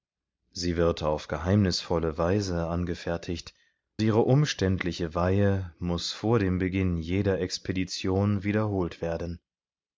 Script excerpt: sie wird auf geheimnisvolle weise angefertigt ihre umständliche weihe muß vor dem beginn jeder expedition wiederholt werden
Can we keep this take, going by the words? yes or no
yes